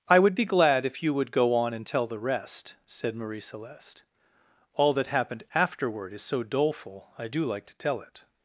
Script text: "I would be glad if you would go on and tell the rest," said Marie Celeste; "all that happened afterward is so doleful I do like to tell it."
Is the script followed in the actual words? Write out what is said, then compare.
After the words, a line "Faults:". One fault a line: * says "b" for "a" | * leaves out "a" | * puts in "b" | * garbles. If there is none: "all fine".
"I would be glad if you would go on and tell the rest," said Marie Celeste; "all that happened afterward is so doleful I do like to tell it."
Faults:
all fine